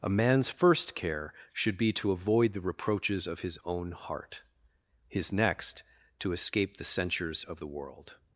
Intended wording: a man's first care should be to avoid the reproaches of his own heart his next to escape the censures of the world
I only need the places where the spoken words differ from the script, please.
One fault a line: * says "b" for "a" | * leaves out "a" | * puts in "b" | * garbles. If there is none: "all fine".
all fine